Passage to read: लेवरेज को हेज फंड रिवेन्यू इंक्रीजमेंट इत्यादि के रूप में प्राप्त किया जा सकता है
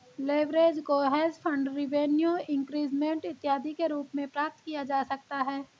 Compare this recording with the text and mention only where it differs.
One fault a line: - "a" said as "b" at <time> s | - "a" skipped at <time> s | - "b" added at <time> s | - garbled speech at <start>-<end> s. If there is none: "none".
none